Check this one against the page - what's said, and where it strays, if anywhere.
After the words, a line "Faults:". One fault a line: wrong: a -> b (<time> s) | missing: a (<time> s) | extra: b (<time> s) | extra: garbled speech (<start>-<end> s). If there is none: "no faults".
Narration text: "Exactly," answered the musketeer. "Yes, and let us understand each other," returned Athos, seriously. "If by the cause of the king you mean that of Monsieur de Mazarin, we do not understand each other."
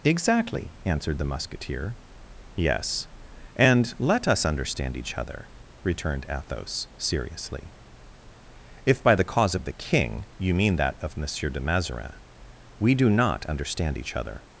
"Exactly," answered the musketeer. "Yes, and let us understand each other," returned Athos, seriously. "If by the cause of the king you mean that of Monsieur de Mazarin, we do not understand each other."
Faults:
no faults